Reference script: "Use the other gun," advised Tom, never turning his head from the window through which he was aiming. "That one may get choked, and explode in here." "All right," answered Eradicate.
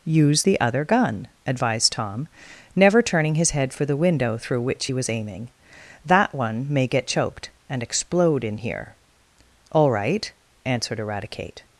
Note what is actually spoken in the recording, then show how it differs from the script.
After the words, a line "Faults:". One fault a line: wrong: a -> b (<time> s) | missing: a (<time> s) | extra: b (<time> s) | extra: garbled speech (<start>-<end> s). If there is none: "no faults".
"Use the other gun," advised Tom, never turning his head for the window through which he was aiming. "That one may get choked, and explode in here." "All right," answered Eradicate.
Faults:
wrong: from -> for (3.7 s)